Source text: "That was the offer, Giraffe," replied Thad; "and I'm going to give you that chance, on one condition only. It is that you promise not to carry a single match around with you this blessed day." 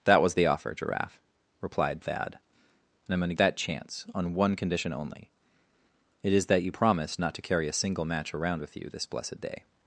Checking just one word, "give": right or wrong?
wrong